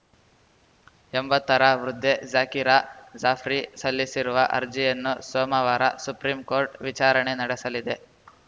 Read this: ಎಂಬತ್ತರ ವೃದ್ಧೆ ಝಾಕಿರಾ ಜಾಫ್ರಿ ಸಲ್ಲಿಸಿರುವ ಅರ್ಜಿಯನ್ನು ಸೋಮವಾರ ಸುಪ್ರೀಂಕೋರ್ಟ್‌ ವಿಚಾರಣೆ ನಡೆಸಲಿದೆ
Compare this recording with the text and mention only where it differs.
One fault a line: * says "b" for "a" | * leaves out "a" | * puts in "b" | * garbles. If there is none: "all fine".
all fine